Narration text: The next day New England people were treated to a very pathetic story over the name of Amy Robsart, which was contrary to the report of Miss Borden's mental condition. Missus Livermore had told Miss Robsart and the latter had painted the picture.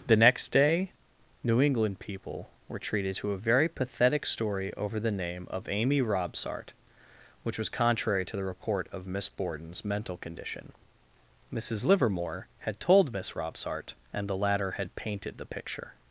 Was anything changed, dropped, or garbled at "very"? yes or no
no